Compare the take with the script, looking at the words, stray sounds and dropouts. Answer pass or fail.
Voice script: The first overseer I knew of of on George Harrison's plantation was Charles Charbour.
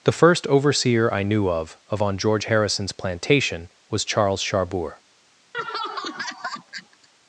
fail